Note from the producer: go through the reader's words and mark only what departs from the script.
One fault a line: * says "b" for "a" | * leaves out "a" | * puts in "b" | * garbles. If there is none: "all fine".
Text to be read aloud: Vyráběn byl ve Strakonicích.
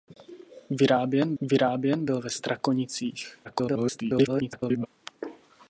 * puts in "vyráběn"
* garbles